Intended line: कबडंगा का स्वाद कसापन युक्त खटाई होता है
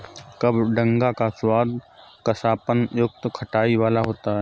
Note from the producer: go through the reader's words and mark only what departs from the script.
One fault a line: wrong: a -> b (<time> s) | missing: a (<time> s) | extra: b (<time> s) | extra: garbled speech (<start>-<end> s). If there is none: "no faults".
extra: वाला (3.7 s)